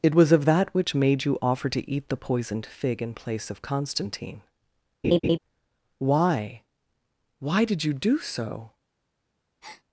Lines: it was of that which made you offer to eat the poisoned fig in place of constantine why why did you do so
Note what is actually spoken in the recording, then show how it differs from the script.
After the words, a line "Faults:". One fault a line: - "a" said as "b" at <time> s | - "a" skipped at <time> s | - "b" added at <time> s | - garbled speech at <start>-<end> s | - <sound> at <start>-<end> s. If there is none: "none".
it was of that which made you offer to eat the poisoned fig in place of constantine why why did you do so
Faults:
- laugh at 5.0-5.4 s
- breath at 9.6-9.8 s